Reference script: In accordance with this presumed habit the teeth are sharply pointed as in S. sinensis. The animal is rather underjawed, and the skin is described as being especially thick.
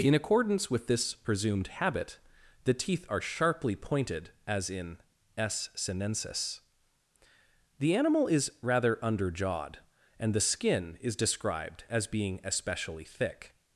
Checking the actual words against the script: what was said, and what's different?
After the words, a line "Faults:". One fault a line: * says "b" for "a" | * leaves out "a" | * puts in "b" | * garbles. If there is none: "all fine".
In accordance with this presumed habit the teeth are sharply pointed as in S. sinensis. The animal is rather underjawed, and the skin is described as being especially thick.
Faults:
all fine